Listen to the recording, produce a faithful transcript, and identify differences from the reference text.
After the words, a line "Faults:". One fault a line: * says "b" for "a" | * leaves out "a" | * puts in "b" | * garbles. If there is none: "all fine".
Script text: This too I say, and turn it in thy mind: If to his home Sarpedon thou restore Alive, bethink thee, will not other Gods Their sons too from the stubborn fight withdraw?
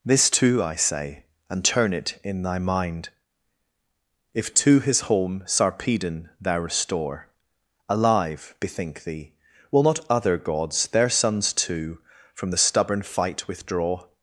This too I say, and turn it in thy mind: If to his home Sarpedon thou restore Alive, bethink thee, will not other Gods Their sons too from the stubborn fight withdraw?
Faults:
all fine